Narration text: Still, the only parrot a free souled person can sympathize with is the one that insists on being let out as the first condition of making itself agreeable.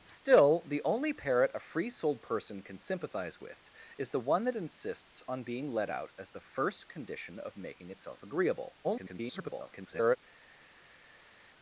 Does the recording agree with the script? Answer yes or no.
no